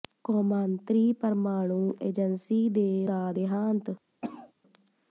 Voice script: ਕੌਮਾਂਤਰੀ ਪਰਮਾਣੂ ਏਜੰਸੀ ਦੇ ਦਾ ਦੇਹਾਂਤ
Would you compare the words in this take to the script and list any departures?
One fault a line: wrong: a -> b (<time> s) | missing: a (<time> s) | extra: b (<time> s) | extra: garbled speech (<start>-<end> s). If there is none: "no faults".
no faults